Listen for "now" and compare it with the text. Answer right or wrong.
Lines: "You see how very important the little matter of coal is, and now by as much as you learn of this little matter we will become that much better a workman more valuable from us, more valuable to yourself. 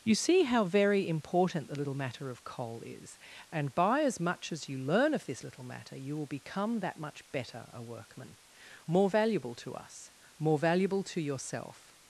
wrong